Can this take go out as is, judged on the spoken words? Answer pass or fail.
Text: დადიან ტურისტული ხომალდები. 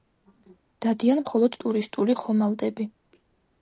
fail